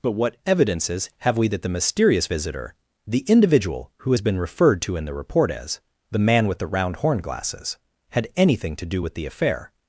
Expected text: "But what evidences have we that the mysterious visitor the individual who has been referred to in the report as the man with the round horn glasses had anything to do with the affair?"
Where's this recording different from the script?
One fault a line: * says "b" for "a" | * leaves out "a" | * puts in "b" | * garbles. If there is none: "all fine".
all fine